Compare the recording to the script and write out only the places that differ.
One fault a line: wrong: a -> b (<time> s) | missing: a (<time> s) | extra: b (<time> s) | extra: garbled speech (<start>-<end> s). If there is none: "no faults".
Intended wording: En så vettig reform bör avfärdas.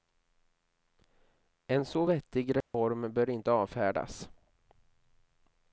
extra: inte (3.3 s)